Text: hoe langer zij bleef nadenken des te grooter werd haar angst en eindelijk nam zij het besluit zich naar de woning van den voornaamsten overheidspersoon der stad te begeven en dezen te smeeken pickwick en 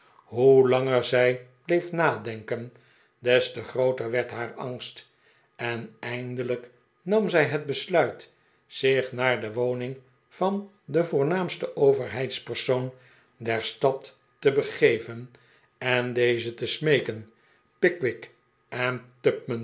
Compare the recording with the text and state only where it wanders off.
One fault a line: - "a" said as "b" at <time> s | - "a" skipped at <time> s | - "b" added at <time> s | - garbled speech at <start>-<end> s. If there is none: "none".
none